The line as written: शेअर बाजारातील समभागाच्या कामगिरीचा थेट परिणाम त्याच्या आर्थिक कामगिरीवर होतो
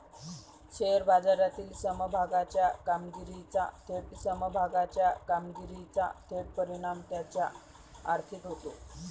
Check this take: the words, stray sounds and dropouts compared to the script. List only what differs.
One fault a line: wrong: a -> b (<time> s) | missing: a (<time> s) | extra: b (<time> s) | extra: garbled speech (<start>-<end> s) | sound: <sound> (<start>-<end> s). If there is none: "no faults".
extra: समभागाच्या कामगिरीचा थेट (4.1 s)
missing: कामगिरीवर (8.4 s)